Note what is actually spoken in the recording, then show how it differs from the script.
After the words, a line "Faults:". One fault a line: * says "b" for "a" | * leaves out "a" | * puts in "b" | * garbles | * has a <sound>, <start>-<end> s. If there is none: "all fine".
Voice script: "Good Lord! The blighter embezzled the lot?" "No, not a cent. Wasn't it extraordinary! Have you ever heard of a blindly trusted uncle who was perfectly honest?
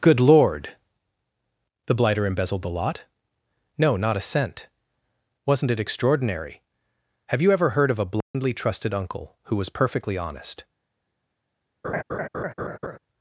"Good Lord! The blighter embezzled the lot?" "No, not a cent. Wasn't it extraordinary! Have you ever heard of a blindly trusted uncle who was perfectly honest?
Faults:
* has a dropout, 8.2-8.3 s
* has a laugh, 11.8-13.0 s